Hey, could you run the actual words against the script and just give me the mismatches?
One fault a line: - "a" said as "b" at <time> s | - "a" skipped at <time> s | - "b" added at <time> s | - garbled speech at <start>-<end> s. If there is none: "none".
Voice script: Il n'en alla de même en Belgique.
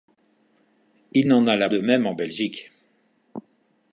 none